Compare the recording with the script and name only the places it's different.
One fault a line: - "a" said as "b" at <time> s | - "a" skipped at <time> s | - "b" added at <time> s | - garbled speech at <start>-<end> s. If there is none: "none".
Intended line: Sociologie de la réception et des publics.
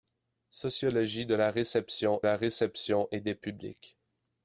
- "la réception" added at 2.2 s